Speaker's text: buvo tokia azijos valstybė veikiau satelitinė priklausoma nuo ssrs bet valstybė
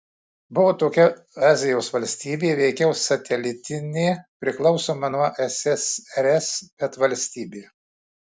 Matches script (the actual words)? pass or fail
pass